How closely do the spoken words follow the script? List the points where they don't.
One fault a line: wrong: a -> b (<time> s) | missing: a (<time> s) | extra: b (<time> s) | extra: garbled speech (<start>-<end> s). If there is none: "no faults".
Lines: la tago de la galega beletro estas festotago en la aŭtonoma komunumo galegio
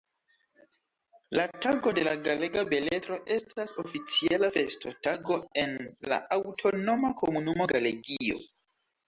extra: oficiala (3.8 s)